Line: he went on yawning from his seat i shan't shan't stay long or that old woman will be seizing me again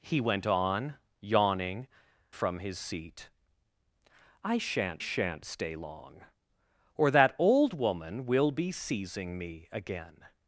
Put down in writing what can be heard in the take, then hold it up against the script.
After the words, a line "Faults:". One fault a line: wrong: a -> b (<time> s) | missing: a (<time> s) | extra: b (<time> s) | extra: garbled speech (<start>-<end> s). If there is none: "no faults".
he went on yawning from his seat i shan't shan't stay long or that old woman will be seizing me again
Faults:
no faults